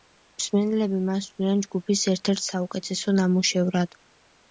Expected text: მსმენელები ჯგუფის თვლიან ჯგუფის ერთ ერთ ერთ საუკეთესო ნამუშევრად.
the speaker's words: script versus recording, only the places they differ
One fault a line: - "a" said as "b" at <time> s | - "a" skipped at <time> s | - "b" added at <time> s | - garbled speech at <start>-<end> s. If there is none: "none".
- "ჯგუფის" said as "მას" at 1.1 s
- "ერთ" skipped at 2.4 s